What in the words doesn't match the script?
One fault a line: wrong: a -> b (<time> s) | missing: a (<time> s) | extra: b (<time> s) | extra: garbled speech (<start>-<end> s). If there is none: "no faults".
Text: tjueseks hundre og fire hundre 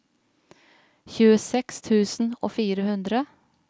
wrong: hundre -> tusen (1.9 s)